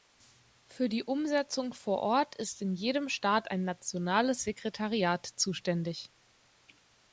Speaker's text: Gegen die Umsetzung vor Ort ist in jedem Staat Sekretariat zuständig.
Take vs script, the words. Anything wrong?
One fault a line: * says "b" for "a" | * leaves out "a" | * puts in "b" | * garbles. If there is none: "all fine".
* says "Für" for "Gegen"
* puts in "ein nationales"